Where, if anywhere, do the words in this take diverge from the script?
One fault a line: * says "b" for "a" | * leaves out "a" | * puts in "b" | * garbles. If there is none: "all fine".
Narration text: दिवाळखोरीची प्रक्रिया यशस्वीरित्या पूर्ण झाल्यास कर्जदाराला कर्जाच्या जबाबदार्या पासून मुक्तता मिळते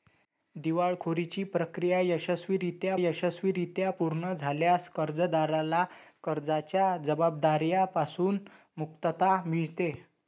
* puts in "यशस्वीरित्या"